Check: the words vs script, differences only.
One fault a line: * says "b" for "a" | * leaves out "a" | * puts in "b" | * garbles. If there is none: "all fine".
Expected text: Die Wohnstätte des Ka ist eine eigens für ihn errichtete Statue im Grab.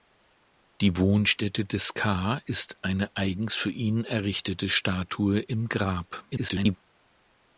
* garbles